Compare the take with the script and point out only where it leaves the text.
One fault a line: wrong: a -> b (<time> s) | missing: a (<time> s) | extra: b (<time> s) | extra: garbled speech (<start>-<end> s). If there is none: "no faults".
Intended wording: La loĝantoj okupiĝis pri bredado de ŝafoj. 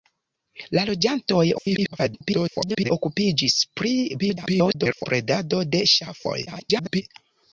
extra: garbled speech (1.5-2.9 s)
extra: garbled speech (4.2-5.1 s)
extra: garbled speech (6.5-7.0 s)